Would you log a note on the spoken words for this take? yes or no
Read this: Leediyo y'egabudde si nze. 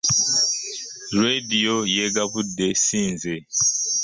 no